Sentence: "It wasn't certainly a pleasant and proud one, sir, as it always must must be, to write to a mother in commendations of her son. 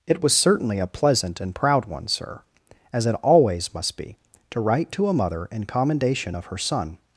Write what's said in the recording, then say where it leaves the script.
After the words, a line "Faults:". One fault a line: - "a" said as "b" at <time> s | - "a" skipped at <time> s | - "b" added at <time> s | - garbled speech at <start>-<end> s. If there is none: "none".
"It was certainly a pleasant and proud one, sir, as it always must be, to write to a mother in commendation of her son.
Faults:
- "wasn't" said as "was" at 0.2 s
- "must" skipped at 4.0 s
- "commendations" said as "commendation" at 5.7 s